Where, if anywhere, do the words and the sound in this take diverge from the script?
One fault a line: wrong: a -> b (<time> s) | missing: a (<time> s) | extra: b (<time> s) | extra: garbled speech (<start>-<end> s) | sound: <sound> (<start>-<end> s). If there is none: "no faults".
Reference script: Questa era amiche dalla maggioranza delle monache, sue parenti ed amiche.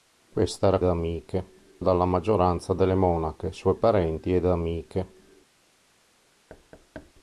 sound: thud (6.5-7.1 s)